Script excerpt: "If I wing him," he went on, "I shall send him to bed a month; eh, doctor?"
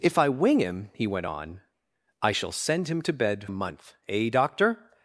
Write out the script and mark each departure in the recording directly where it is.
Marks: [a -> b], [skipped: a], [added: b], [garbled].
"If I wing him," he went on, "I shall send him to bed a month; eh, doctor?"